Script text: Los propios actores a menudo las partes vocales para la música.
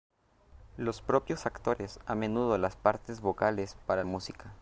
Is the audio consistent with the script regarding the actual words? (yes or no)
no